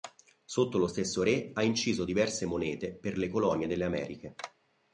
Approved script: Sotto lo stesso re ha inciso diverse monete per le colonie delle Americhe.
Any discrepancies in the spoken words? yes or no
no